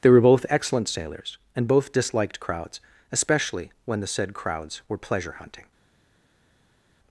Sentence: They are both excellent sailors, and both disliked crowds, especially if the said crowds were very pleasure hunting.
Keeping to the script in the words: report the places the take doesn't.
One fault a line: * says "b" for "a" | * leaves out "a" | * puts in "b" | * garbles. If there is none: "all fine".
* says "were" for "are"
* says "when" for "if"
* leaves out "very"